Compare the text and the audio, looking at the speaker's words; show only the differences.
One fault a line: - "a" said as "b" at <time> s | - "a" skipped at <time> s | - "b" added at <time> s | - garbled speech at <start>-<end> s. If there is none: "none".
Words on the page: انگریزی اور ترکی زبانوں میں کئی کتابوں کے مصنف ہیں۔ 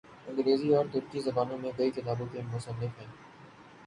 none